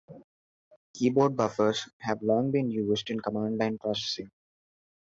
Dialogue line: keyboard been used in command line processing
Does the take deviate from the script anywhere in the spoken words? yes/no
yes